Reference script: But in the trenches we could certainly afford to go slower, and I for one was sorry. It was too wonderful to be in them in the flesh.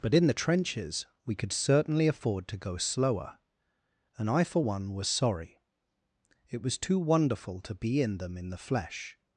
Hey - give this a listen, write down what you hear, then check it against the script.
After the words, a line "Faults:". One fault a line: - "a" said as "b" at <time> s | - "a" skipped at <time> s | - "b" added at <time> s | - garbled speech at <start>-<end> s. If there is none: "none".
But in the trenches we could certainly afford to go slower, and I for one was sorry. It was too wonderful to be in them in the flesh.
Faults:
none